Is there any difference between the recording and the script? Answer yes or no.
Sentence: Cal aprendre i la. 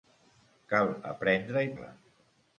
no